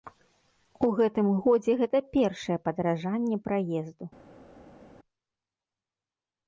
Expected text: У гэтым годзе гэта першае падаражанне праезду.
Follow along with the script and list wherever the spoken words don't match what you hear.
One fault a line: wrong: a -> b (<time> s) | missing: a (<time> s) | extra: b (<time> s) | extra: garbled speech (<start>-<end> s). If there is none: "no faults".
no faults